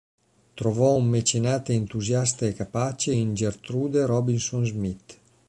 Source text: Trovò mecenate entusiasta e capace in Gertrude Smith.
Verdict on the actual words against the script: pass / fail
fail